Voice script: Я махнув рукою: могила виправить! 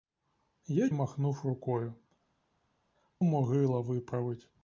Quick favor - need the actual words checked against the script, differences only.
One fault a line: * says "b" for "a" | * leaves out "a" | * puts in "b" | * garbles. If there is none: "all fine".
all fine